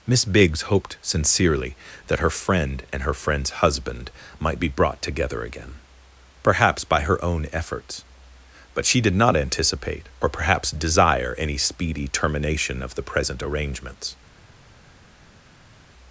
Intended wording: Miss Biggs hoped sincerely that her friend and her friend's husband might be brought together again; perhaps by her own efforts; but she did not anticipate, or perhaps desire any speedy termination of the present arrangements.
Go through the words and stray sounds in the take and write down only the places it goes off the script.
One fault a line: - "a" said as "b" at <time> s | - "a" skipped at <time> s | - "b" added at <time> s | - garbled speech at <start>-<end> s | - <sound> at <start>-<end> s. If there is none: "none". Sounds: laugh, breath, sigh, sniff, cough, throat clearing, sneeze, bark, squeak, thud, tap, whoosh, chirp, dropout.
none